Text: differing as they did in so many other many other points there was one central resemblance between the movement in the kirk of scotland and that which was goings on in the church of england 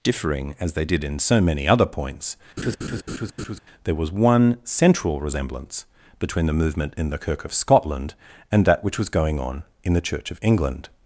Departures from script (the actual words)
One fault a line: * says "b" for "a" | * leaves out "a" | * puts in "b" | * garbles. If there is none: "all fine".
* leaves out "many other"
* says "going" for "goings"